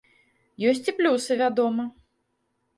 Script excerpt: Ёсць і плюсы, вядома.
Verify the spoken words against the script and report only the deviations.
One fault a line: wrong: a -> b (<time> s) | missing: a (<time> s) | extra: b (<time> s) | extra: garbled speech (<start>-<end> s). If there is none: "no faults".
no faults